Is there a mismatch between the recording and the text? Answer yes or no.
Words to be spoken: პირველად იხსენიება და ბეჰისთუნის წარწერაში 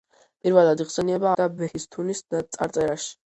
no